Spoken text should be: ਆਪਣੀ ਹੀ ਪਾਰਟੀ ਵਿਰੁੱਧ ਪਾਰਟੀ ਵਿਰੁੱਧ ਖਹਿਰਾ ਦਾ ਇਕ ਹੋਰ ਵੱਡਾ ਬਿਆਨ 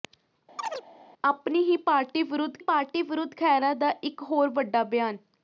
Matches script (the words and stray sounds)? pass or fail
fail